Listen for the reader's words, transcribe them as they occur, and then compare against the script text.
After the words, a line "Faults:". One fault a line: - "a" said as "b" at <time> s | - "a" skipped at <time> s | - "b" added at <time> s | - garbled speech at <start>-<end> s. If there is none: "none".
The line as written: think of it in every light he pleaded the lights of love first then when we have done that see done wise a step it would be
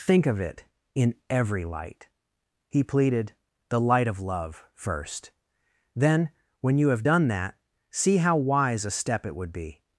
think of it in every light he pleaded the light of love first then when you have done that see how wise a step it would be
Faults:
- "lights" said as "light" at 3.8 s
- "we" said as "you" at 6.8 s
- "done" said as "how" at 8.2 s